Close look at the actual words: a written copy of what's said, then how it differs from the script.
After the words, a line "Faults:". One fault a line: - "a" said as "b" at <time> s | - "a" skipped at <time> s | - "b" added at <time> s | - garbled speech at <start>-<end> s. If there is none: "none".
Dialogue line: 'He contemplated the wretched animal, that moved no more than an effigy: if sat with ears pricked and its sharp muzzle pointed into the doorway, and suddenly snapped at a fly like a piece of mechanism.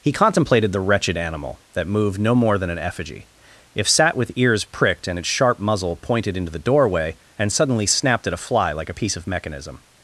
'He contemplated the wretched animal, that moved no more than an effigy: if sat with ears pricked and its sharp muzzle pointed into the doorway, and suddenly snapped at a fly like a piece of mechanism.
Faults:
none